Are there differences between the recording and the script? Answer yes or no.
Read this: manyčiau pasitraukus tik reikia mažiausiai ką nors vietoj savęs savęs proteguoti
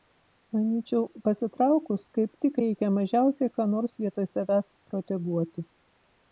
yes